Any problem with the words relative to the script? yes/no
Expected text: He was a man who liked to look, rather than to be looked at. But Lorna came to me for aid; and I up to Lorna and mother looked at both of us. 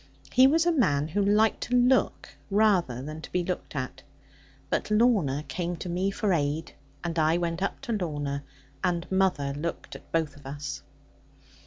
yes